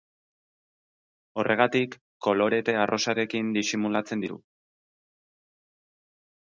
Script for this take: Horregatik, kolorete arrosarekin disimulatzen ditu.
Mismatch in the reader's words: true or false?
false